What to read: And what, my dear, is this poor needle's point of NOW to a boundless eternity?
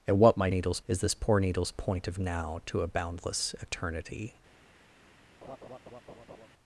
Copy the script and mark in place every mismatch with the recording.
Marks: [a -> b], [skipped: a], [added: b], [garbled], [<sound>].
And what, my [dear, -> needle's] is this poor needle's point of NOW to a boundless eternity? [laugh]